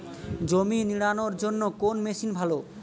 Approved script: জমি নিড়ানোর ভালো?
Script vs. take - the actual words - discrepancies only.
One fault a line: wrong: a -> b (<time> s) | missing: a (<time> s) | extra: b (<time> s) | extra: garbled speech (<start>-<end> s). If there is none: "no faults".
extra: জন্য কোন মেশিন (1.4 s)